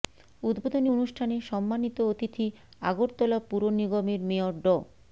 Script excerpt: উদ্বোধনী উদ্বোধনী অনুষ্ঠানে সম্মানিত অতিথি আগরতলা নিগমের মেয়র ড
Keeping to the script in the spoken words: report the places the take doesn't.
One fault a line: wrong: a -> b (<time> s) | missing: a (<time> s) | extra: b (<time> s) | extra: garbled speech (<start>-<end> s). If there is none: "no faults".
missing: উদ্বোধনী (0.9 s)
extra: পুর (3.5 s)